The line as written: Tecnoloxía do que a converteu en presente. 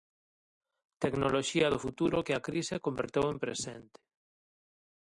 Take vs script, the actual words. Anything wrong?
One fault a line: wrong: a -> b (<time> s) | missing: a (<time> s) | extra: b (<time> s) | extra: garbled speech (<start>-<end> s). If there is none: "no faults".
extra: futuro (1.8 s)
extra: crise (2.5 s)